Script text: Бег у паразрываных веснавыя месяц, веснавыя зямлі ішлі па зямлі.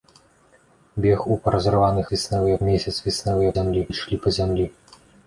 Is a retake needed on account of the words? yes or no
no